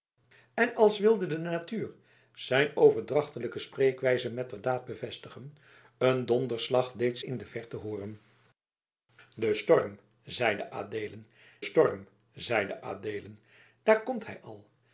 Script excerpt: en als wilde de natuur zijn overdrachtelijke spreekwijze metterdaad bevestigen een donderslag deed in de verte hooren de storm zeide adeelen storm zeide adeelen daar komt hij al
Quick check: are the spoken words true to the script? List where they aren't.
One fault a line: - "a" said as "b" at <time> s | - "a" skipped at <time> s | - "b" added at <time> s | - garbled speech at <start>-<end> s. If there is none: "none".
none